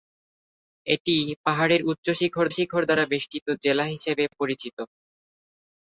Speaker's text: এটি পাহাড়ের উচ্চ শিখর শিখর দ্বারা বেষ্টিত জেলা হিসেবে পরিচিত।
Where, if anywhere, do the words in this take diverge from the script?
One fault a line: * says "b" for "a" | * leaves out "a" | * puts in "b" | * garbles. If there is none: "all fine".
all fine